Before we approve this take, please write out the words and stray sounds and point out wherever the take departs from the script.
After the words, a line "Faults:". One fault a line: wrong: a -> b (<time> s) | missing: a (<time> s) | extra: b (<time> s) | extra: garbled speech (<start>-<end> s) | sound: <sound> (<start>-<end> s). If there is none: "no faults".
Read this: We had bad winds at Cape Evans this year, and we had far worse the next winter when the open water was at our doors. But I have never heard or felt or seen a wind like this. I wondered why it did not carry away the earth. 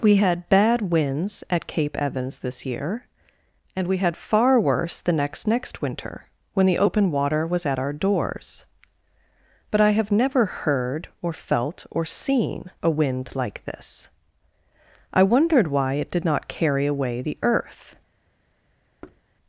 We had bad winds at Cape Evans this year, and we had far worse the next next winter when the open water was at our doors. But I have never heard or felt or seen a wind like this. I wondered why it did not carry away the earth.
Faults:
extra: next (5.5 s)
sound: thud (19.0-19.2 s)